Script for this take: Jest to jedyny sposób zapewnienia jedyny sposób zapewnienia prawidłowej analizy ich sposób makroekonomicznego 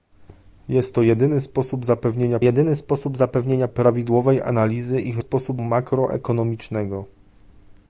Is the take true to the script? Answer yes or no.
yes